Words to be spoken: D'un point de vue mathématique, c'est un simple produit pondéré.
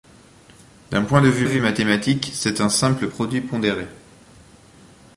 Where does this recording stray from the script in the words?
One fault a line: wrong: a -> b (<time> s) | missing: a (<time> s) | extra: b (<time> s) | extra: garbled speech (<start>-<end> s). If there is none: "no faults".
extra: vue (1.4 s)